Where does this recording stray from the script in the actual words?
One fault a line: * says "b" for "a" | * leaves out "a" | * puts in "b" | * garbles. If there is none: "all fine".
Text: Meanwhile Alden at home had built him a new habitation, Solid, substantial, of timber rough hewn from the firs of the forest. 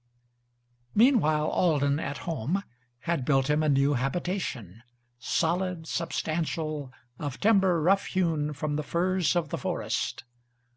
all fine